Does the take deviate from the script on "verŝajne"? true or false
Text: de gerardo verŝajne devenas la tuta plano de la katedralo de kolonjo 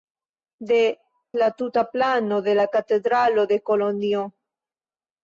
true